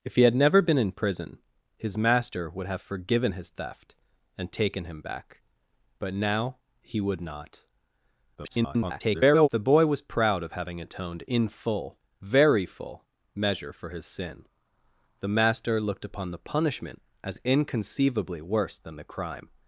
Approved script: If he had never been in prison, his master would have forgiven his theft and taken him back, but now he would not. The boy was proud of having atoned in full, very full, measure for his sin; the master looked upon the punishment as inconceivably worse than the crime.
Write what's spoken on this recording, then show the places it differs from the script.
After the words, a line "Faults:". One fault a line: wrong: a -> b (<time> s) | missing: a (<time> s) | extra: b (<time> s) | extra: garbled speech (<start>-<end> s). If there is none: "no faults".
If he had never been in prison, his master would have forgiven his theft and taken him back, but now he would not. [garbled] The boy was proud of having atoned in full, very full, measure for his sin; the master looked upon the punishment as inconceivably worse than the crime.
Faults:
extra: garbled speech (8.4-9.5 s)